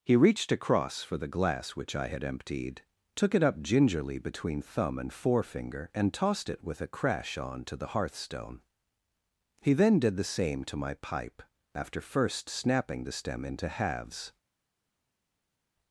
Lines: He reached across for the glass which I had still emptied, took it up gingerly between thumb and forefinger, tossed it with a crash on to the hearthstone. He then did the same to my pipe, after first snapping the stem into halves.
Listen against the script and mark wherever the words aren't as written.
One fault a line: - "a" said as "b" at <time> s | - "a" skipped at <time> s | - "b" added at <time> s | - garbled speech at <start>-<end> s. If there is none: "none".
- "still" skipped at 2.2 s
- "and" added at 5.9 s